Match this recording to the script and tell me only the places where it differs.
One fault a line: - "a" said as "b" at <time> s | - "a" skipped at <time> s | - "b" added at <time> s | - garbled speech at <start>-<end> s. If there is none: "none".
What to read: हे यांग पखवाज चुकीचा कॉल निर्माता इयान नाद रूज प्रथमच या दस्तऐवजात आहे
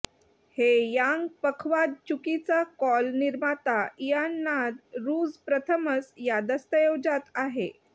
none